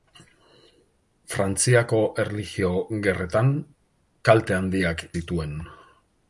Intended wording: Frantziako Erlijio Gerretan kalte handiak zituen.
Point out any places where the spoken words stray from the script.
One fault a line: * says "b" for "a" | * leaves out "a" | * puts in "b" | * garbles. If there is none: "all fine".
all fine